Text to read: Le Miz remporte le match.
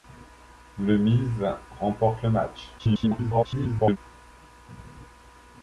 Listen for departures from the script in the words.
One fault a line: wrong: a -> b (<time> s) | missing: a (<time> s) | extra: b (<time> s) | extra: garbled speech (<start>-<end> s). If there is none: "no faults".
extra: garbled speech (2.8-4.0 s)